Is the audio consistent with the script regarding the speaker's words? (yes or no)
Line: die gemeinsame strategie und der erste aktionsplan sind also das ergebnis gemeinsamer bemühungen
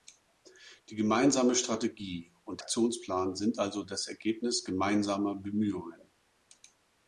no